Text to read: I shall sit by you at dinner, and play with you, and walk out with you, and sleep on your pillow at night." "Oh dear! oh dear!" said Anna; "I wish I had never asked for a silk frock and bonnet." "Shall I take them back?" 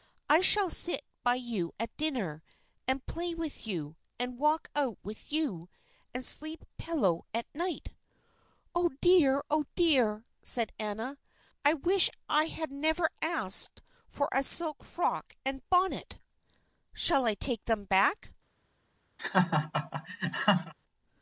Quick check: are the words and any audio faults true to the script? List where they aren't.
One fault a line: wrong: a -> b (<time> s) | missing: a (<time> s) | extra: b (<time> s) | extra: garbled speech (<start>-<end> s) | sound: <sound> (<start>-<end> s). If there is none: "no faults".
missing: on your (6.6 s)
sound: laugh (19.2-20.7 s)